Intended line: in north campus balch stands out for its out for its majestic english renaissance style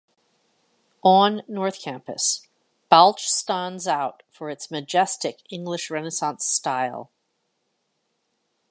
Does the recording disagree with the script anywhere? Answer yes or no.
yes